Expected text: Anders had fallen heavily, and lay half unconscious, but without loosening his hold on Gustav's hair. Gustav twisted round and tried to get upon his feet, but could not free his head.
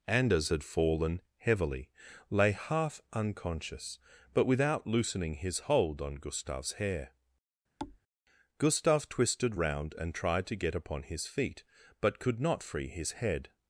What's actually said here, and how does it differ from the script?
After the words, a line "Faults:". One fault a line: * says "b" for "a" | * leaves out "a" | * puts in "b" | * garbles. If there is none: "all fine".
Anders had fallen heavily, lay half unconscious, but without loosening his hold on Gustav's hair. Gustav twisted round and tried to get upon his feet, but could not free his head.
Faults:
* leaves out "and"